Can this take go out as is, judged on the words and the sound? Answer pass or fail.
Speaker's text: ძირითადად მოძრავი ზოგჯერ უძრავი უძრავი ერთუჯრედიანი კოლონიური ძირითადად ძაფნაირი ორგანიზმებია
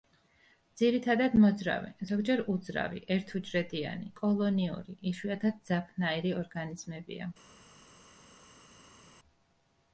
fail